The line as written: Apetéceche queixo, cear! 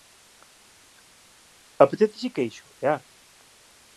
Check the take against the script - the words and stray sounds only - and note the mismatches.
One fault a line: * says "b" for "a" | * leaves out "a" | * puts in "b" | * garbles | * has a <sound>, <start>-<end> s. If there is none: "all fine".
all fine